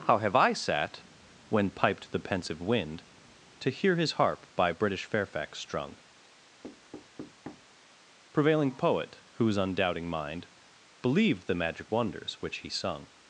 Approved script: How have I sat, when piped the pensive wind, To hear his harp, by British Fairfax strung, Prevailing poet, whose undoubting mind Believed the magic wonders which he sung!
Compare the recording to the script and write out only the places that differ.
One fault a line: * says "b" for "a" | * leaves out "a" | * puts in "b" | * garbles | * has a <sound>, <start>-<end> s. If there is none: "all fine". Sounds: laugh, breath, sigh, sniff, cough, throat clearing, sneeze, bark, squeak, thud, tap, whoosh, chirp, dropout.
* has a thud, 6.6-7.7 s